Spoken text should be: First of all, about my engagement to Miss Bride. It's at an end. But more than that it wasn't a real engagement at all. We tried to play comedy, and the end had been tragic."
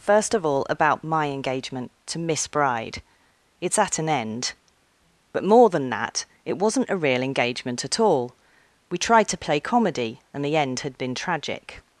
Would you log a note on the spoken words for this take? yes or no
no